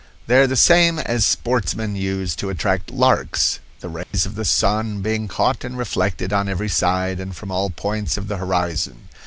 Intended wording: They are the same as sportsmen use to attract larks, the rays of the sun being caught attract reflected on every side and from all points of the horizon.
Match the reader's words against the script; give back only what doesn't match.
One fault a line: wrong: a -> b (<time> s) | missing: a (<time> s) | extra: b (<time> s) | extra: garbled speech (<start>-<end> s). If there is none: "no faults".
wrong: attract -> and (5.6 s)